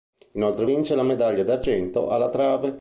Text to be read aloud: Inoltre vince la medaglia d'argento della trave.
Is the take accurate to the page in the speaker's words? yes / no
no